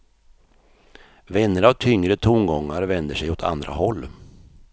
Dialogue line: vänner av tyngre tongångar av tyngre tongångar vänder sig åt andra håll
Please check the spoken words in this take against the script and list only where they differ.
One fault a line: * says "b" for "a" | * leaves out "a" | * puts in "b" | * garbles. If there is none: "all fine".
* leaves out "av tyngre tongångar"